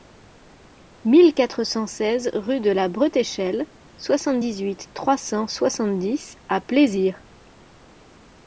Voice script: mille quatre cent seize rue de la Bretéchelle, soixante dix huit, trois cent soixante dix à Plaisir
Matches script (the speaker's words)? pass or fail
pass